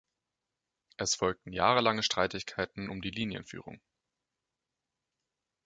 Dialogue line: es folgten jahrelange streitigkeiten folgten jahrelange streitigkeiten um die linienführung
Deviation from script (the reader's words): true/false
true